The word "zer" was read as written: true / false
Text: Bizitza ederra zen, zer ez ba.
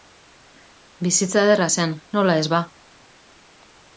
false